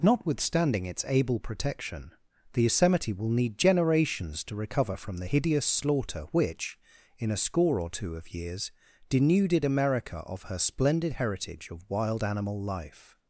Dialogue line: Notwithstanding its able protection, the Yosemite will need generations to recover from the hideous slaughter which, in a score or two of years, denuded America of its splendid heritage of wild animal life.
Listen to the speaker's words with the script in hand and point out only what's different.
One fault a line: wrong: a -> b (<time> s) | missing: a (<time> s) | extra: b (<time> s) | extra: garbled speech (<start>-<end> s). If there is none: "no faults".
wrong: its -> her (10.4 s)